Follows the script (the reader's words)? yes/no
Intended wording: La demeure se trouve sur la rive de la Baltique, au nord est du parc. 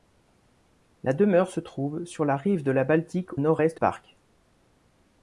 no